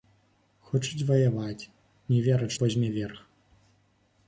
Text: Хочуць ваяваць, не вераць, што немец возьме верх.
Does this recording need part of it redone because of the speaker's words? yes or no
yes